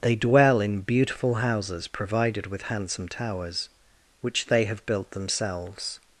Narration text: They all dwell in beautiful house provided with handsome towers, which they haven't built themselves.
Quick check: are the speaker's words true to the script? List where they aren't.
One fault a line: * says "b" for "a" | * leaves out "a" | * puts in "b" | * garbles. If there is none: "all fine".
* leaves out "all"
* says "houses" for "house"
* says "have" for "haven't"